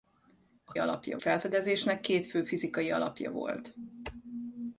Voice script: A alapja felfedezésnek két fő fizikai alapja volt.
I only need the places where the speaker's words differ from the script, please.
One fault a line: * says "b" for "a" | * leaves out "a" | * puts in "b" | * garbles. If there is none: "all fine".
all fine